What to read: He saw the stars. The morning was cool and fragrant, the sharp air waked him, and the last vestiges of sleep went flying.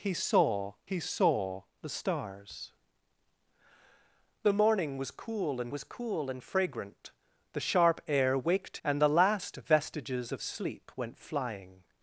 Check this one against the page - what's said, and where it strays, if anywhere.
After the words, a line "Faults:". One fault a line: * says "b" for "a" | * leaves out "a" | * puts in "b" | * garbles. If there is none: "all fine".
He saw he saw the stars. The morning was cool and was cool and fragrant, the sharp air waked and the last vestiges of sleep went flying.
Faults:
* puts in "he saw"
* puts in "was cool and"
* leaves out "him"